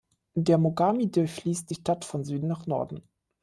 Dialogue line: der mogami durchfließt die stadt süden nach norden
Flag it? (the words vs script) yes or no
yes